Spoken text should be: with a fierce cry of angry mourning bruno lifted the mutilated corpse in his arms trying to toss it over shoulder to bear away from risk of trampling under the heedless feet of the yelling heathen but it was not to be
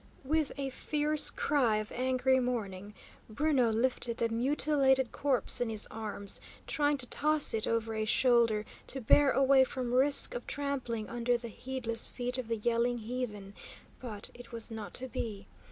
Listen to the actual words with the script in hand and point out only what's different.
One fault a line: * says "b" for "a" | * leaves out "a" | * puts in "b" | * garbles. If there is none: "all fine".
* puts in "a"